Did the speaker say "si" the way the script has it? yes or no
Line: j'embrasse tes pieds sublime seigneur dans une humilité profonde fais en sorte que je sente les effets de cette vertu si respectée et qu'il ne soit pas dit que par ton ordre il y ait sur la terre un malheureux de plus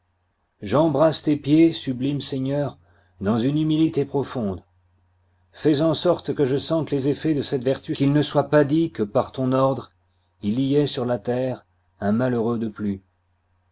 no